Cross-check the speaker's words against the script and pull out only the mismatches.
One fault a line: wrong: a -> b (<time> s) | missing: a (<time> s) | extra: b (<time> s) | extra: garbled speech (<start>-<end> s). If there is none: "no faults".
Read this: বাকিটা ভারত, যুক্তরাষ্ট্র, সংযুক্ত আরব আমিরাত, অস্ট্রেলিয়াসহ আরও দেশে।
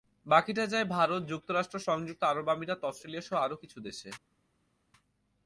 extra: যায় (0.7 s)
extra: কিছু (3.6 s)